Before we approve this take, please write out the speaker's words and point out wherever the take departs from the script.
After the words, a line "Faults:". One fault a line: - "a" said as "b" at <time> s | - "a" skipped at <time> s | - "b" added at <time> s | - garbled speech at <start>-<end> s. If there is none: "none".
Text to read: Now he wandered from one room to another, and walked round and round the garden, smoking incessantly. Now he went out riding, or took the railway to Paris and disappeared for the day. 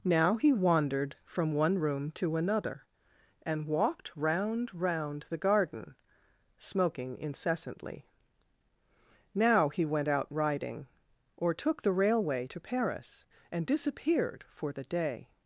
Now he wandered from one room to another, and walked round round the garden, smoking incessantly. Now he went out riding, or took the railway to Paris and disappeared for the day.
Faults:
- "and" skipped at 4.7 s